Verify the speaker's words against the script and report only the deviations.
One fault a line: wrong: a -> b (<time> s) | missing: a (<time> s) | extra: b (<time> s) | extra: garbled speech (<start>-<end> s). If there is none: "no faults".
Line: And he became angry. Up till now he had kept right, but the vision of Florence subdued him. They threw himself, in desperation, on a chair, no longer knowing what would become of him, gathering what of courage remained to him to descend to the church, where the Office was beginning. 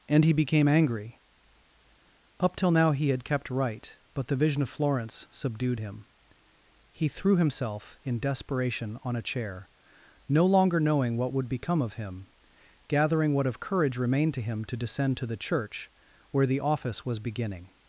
wrong: They -> He (6.9 s)